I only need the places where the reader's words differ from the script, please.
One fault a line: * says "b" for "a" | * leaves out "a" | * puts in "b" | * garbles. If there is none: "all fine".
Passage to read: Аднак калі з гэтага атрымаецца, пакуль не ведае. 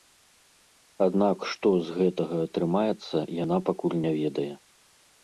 * says "што" for "калі"
* puts in "яна"